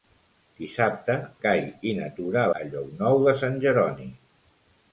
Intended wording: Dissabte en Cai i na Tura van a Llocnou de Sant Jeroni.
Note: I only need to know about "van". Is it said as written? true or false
false